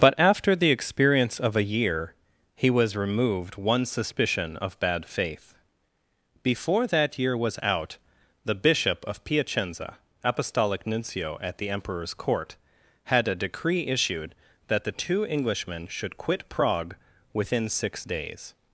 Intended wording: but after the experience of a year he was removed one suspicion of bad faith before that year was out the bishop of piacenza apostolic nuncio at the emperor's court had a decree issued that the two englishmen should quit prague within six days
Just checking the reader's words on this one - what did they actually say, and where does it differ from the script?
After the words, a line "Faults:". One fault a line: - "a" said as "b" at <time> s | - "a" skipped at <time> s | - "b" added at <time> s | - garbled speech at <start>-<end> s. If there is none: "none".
but after the experience of a year he was removed one suspicion of bad faith before that year was out the bishop of piacenza apostolic nuncio at the emperor's court had a decree issued that the two englishmen should quit prague within six days
Faults:
none